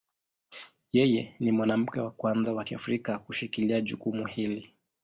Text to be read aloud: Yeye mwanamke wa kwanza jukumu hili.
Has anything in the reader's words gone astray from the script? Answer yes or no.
yes